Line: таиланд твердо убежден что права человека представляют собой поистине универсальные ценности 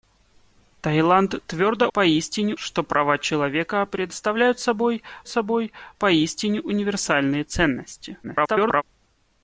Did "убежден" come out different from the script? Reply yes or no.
yes